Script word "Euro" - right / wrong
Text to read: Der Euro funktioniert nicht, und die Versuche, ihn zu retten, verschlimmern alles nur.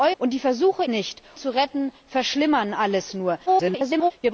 wrong